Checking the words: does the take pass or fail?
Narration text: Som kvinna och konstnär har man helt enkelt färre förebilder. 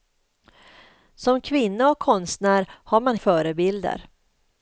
fail